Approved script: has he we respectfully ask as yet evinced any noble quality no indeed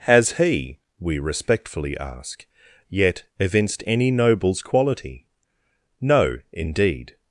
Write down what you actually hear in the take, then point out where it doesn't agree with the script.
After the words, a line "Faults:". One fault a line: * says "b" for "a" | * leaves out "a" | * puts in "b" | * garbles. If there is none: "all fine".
has he we respectfully ask yet evinced any nobles quality no indeed
Faults:
* leaves out "as"
* says "nobles" for "noble"